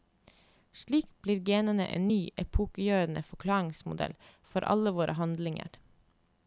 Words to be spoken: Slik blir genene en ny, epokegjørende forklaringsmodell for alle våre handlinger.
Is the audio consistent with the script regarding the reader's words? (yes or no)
yes